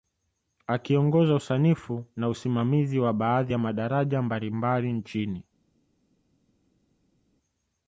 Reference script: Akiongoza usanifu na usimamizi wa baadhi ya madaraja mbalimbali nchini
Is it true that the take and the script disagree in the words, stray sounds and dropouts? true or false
false